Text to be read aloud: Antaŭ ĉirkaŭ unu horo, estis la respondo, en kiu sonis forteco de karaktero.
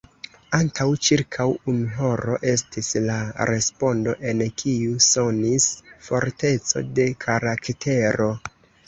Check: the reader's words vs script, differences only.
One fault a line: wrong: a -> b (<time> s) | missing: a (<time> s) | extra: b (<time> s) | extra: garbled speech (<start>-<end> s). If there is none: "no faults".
no faults